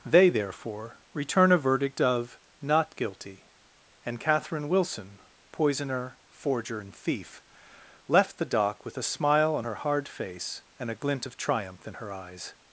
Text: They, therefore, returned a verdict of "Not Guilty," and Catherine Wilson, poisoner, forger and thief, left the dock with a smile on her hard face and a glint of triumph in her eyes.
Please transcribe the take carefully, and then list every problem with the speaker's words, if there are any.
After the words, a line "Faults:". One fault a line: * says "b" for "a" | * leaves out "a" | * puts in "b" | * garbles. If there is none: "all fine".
They, therefore, return a verdict of "Not Guilty," and Catherine Wilson, poisoner, forger and thief, left the dock with a smile on her hard face and a glint of triumph in her eyes.
Faults:
* says "return" for "returned"